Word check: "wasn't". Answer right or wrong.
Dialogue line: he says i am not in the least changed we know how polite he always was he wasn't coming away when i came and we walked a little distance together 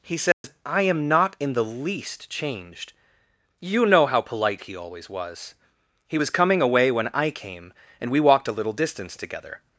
wrong